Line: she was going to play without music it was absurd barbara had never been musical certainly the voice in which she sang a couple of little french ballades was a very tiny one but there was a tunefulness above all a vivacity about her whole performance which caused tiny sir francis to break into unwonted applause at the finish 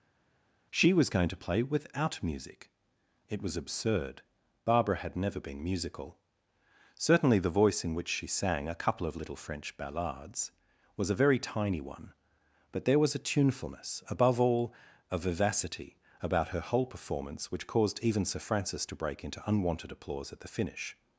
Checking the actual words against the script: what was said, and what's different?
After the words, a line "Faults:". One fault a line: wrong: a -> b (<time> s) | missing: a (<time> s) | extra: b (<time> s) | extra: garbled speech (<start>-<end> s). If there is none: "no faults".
she was going to play without music it was absurd barbara had never been musical certainly the voice in which she sang a couple of little french ballades was a very tiny one but there was a tunefulness above all a vivacity about her whole performance which caused even sir francis to break into unwonted applause at the finish
Faults:
wrong: tiny -> even (18.0 s)